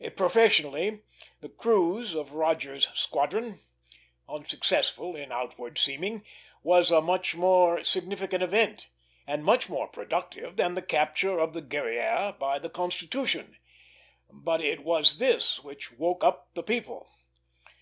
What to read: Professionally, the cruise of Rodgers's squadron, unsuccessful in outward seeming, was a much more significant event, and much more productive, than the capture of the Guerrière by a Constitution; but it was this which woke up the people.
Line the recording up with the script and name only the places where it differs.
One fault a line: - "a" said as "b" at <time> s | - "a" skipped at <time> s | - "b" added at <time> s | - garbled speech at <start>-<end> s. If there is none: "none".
- "a" said as "the" at 12.6 s